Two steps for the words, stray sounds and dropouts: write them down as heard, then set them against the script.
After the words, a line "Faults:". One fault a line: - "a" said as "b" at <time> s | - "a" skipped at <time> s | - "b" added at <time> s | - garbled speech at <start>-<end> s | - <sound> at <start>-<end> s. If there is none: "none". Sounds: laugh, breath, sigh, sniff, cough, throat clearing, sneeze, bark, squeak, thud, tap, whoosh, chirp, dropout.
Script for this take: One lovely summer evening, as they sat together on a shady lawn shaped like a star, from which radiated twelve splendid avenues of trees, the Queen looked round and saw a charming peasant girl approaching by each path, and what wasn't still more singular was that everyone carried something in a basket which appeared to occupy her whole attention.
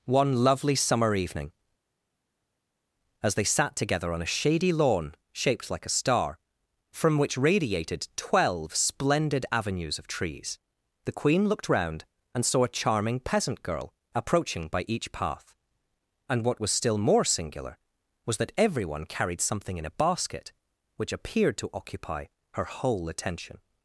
One lovely summer evening, as they sat together on a shady lawn shaped like a star, from which radiated twelve splendid avenues of trees, the Queen looked round and saw a charming peasant girl approaching by each path, and what was still more singular was that everyone carried something in a basket which appeared to occupy her whole attention.
Faults:
- "wasn't" said as "was" at 16.6 s